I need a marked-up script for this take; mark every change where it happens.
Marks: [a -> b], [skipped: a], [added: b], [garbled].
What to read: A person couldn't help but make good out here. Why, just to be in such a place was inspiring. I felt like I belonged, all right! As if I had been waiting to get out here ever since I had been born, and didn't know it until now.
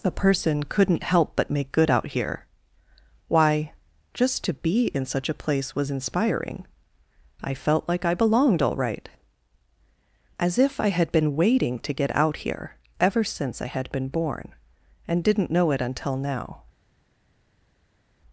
A person couldn't help but make good out here. Why, just to be in such a place was inspiring. I felt like I belonged, all right! As if I had been waiting to get out here ever since I had been born, and didn't know it until now.